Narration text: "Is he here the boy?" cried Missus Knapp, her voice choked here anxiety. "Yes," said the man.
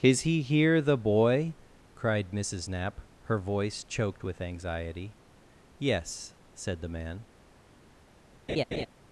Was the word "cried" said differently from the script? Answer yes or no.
no